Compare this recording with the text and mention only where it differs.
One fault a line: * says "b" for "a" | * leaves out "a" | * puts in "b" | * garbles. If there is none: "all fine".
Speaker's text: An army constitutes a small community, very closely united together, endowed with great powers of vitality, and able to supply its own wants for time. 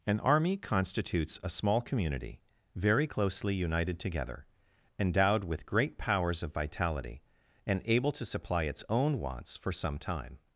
* puts in "some"